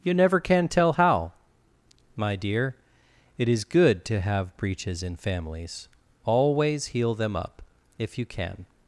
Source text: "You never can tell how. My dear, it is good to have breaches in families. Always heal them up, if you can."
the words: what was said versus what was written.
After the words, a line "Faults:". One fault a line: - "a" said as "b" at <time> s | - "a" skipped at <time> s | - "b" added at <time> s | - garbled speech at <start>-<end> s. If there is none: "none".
"You never can tell how. My dear, it is good to have breaches in families. Always heal them up, if you can."
Faults:
none